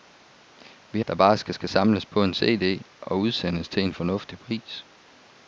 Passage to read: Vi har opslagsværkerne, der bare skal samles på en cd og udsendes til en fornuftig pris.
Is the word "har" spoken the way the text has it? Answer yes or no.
no